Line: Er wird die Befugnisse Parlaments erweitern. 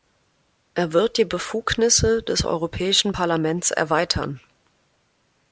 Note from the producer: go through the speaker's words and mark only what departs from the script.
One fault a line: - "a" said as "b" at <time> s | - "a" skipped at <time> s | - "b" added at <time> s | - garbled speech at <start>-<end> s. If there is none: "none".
- "des Europäischen" added at 2.2 s